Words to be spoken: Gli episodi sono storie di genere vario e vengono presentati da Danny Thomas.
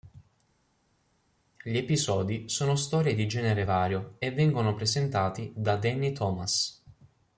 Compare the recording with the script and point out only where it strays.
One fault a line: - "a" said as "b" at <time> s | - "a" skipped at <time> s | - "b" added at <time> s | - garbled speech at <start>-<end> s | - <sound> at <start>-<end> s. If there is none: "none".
none